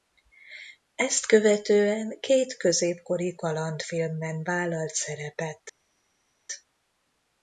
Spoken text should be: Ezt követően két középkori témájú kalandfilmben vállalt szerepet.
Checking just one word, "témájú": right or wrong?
wrong